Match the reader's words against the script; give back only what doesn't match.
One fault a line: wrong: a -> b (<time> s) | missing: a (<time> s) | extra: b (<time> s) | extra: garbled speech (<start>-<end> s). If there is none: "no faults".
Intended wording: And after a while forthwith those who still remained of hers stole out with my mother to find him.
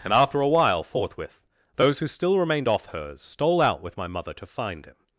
wrong: of -> off (2.7 s)